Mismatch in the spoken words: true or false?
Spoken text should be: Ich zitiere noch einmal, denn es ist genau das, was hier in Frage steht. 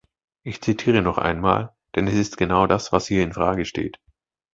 false